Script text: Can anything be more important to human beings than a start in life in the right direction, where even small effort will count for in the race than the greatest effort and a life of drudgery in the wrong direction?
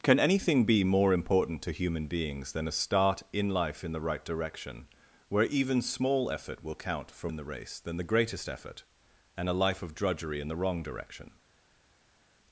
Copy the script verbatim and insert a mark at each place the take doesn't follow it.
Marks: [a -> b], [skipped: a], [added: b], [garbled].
Can anything be more important to human beings than a start in life in the right direction, where even small effort will count for in the race than the greatest effort and a life of drudgery in the wrong direction?